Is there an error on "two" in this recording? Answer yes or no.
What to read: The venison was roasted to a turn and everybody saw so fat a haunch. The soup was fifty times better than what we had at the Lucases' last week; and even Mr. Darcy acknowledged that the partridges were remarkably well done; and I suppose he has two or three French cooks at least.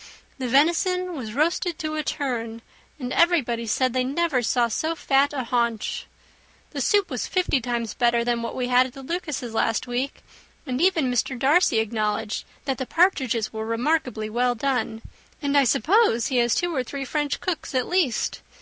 no